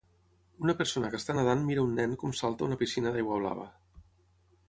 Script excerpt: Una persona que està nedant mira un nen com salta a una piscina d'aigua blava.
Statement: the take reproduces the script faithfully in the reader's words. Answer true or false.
true